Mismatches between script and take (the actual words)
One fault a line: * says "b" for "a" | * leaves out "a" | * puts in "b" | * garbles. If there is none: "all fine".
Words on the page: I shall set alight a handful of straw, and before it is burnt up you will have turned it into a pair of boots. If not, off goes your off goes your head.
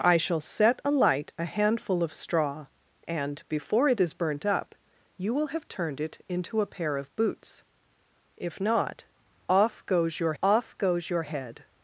all fine